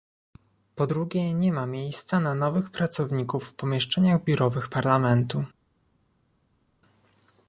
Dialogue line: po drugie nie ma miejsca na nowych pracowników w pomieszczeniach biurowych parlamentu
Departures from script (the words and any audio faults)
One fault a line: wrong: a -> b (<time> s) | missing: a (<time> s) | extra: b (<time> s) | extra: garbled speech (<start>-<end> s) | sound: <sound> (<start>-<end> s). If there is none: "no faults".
no faults